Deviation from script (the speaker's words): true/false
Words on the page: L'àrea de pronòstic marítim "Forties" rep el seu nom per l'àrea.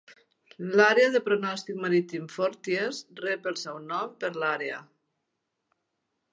false